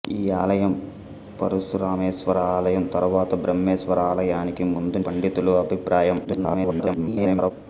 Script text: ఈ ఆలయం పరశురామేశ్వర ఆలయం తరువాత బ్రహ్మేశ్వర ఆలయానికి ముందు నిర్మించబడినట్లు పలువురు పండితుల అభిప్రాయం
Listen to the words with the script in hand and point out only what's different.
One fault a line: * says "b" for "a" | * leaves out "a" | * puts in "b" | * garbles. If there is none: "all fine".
* leaves out "నిర్మించబడినట్లు పలువురు"
* garbles